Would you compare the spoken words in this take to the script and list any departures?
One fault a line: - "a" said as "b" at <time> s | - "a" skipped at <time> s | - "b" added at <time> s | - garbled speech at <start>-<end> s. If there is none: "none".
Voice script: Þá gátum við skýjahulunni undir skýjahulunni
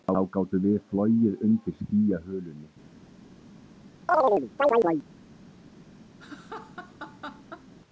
- "skýjahulunni" said as "flogið" at 0.9 s